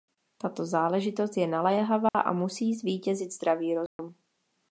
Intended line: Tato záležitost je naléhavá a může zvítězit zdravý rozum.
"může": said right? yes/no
no